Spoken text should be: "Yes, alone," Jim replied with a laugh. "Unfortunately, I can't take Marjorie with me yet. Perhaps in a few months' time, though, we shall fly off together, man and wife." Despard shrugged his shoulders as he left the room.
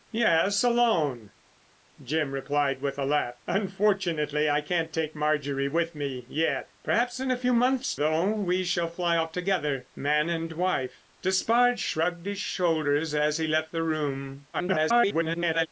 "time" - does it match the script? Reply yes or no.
no